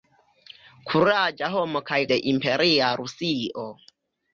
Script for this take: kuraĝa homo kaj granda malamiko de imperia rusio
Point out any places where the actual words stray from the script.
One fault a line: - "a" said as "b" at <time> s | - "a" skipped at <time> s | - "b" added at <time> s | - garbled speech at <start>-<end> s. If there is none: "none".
- "granda malamiko" skipped at 2.0 s